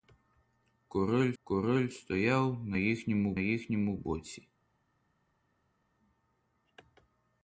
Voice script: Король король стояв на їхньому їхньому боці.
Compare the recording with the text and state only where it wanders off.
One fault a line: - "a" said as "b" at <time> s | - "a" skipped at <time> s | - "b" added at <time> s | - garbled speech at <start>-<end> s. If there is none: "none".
none